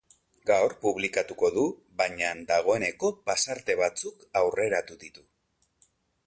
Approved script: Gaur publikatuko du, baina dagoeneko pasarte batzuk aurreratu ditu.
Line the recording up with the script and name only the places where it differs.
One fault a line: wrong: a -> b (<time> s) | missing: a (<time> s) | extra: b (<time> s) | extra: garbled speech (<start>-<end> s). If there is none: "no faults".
no faults